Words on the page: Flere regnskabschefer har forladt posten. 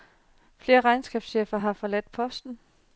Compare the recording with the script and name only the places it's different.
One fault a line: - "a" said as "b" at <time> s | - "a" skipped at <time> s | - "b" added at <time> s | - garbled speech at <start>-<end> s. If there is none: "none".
none